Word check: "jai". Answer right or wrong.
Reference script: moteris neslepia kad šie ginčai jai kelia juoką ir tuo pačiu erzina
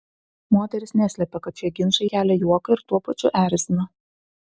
wrong